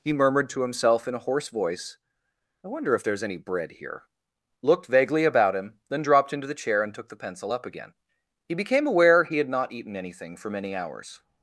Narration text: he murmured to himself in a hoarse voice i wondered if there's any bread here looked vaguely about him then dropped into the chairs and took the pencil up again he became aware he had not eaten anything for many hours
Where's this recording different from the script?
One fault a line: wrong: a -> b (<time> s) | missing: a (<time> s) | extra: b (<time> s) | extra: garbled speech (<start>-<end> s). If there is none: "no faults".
wrong: wondered -> wonder (2.7 s)
wrong: chairs -> chair (6.5 s)